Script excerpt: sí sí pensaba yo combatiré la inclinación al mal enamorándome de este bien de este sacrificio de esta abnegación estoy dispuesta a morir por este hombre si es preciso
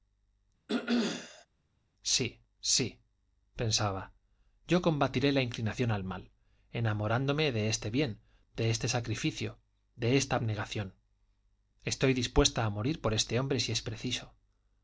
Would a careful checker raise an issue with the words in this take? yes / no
no